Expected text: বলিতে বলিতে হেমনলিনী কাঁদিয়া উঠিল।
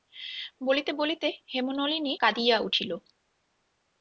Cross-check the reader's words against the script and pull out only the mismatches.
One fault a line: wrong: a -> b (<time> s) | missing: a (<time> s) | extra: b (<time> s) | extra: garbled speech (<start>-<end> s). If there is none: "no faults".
no faults